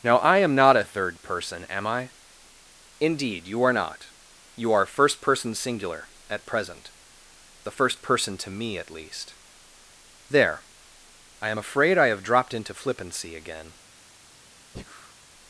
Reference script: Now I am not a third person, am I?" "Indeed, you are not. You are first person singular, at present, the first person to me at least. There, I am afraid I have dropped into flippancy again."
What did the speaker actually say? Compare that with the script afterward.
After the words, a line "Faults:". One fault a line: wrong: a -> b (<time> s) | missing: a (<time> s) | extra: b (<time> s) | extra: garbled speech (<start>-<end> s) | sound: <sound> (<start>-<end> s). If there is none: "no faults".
Now I am not a third person, am I?" "Indeed, you are not. You are first person singular, at present, the first person to me at least. There, I am afraid I have dropped into flippancy again."
Faults:
sound: breath (14.7-15.1 s)